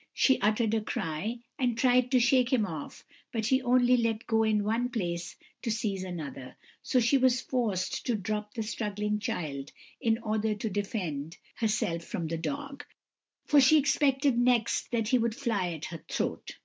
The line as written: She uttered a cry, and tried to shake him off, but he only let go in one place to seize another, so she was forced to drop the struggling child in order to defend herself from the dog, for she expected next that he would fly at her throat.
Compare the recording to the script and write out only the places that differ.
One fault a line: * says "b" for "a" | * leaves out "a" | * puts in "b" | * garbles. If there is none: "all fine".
all fine